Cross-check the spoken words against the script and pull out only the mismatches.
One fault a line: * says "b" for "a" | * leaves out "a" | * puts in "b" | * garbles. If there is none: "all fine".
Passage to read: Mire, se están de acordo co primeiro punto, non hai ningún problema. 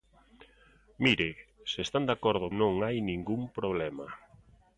* leaves out "co primeiro punto"